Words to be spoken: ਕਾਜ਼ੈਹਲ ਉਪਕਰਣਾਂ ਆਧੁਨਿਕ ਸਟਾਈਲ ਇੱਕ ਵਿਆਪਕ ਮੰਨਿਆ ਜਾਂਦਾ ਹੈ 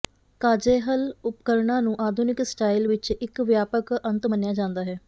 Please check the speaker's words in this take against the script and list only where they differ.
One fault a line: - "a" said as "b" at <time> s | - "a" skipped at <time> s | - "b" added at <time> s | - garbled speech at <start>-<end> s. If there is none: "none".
- "ਨੂੰ" added at 1.8 s
- "ਵਿੱਚ" added at 2.8 s
- "ਅੰਤ" added at 4.0 s